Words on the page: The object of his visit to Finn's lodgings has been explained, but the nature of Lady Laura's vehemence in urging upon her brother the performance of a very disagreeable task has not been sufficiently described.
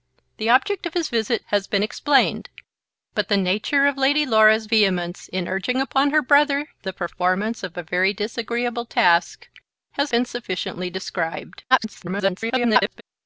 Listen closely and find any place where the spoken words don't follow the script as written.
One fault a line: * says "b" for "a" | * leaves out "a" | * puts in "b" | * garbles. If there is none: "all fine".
* leaves out "to Finn's lodgings"
* leaves out "not"
* garbles